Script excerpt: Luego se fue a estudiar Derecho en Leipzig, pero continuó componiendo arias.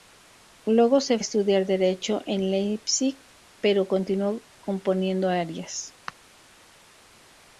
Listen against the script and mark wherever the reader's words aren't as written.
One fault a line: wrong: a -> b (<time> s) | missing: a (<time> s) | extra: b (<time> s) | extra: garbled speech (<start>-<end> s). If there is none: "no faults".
missing: fue (1.2 s)